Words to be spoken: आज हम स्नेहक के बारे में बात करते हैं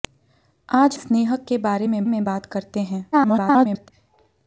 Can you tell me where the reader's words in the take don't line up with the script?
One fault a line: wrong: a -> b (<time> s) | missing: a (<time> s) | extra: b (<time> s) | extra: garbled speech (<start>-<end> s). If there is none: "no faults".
missing: हम (1.0 s)
extra: में (2.1 s)
extra: garbled speech (3.1-3.9 s)